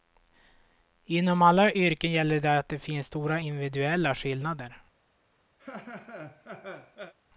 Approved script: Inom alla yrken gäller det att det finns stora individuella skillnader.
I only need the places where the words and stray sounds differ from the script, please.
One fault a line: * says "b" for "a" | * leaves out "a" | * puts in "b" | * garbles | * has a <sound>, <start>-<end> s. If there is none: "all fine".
* has a laugh, 5.6-7.1 s